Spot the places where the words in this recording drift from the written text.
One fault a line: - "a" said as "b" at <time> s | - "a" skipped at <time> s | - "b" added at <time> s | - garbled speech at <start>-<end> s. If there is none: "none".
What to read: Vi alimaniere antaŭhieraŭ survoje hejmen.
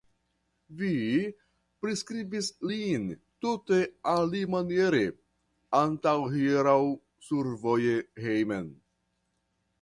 - "priskribis lin tute" added at 1.8 s